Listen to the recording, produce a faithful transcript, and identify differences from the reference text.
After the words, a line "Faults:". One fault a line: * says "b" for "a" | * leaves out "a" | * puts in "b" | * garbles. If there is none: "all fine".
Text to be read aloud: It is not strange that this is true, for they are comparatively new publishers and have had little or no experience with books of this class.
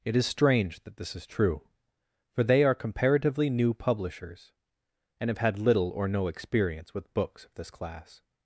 It is strange that this is true, for they are comparatively new publishers and have had little or no experience with books of this class.
Faults:
* leaves out "not"